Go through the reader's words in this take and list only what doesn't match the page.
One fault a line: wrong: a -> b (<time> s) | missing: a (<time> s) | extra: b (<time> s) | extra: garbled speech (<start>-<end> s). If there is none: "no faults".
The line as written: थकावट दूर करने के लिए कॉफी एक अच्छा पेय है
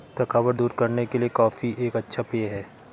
no faults